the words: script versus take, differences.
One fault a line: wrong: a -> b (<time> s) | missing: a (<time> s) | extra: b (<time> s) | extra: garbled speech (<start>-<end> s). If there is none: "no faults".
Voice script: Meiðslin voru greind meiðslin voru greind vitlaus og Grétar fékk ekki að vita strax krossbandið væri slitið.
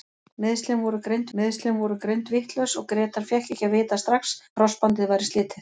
no faults